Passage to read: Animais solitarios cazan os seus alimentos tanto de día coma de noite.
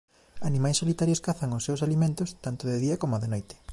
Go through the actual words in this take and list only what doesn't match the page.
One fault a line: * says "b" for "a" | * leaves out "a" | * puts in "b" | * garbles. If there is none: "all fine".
all fine